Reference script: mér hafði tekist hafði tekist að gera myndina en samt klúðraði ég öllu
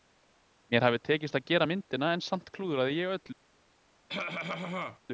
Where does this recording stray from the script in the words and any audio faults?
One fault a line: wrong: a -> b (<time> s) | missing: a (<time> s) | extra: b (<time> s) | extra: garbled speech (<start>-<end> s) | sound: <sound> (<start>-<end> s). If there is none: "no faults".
missing: hafði tekist (1.4 s)
sound: cough (4.1-5.0 s)